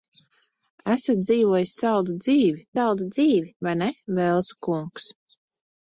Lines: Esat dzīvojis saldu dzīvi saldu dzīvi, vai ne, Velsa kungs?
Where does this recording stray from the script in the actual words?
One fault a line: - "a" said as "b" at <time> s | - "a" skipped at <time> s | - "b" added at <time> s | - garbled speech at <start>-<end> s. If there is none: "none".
none